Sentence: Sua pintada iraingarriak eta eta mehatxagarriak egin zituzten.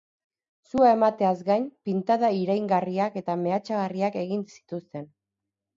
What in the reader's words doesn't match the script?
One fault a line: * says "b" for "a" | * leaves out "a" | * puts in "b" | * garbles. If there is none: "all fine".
* puts in "emateaz gain"
* leaves out "eta"